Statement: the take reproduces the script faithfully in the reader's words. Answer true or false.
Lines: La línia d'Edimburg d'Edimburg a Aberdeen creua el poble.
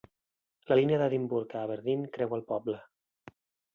false